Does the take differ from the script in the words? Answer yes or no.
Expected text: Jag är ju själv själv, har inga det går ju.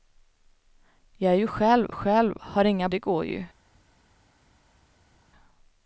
no